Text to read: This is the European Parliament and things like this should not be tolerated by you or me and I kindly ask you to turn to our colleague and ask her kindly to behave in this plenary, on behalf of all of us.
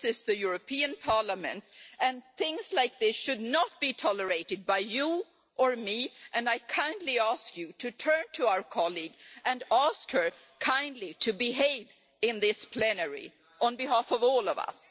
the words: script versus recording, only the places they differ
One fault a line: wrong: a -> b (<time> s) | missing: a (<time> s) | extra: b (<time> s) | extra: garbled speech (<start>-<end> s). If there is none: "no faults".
no faults